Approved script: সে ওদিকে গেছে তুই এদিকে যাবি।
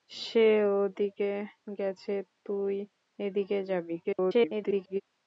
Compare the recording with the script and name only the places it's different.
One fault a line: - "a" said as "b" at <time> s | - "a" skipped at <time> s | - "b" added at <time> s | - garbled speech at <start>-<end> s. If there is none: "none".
- garbled speech at 4.0-5.0 s